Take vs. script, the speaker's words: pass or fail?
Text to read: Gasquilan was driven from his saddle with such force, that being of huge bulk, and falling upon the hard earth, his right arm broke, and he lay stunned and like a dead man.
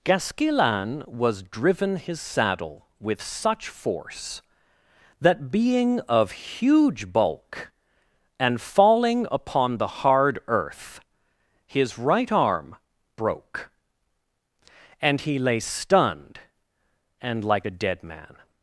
fail